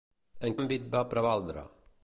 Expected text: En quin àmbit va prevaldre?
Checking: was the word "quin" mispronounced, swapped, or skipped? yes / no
yes